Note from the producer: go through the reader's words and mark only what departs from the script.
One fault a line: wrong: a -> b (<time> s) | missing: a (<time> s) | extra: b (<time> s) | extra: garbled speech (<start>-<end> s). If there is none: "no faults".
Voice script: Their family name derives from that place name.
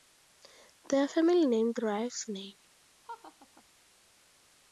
missing: from that place (2.2 s)